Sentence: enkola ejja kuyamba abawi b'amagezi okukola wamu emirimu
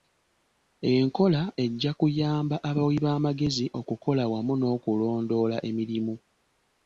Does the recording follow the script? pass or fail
fail